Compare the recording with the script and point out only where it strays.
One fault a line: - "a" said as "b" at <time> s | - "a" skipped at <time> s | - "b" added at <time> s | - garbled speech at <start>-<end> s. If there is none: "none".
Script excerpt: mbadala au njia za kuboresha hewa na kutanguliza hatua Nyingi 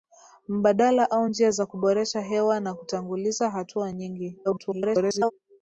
- garbled speech at 4.4-5.3 s